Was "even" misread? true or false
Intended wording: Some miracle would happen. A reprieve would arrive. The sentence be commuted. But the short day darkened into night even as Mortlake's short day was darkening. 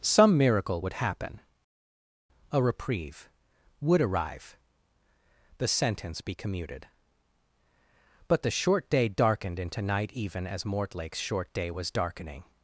false